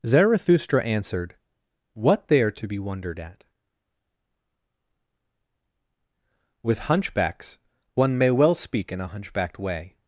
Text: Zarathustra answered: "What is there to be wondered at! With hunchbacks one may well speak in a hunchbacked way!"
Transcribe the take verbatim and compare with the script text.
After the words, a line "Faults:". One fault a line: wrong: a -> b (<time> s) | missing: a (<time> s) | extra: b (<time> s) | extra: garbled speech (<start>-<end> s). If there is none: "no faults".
Zarathustra answered: "What there to be wondered at! With hunchbacks one may well speak in a hunchbacked way!"
Faults:
missing: is (2.3 s)